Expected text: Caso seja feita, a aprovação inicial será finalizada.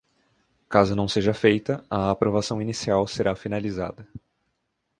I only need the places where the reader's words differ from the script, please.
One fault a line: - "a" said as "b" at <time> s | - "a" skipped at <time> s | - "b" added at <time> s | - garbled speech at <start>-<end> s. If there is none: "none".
- "não" added at 0.9 s